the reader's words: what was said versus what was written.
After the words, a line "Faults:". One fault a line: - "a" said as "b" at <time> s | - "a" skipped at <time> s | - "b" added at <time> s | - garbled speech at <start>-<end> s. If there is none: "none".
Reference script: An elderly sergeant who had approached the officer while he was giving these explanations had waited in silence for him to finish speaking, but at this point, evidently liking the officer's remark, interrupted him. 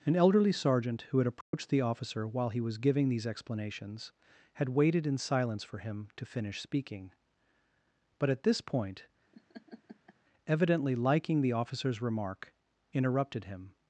An elderly sergeant who had approached the officer while he was giving these explanations had waited in silence for him to finish speaking, but at this point, evidently liking the officer's remark, interrupted him.
Faults:
none